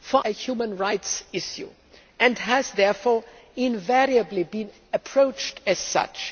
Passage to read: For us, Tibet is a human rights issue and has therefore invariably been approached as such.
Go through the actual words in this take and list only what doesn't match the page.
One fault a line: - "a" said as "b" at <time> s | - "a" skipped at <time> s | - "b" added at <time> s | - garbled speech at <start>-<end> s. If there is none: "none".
- "us Tibet is" skipped at 0.2 s